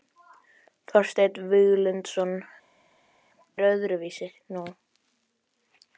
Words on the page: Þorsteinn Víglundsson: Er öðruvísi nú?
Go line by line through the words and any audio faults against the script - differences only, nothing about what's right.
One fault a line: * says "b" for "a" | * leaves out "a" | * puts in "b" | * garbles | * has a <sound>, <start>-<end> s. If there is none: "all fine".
all fine